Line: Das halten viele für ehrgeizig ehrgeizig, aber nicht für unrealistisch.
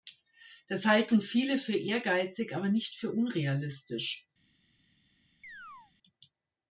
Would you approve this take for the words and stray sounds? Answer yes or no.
no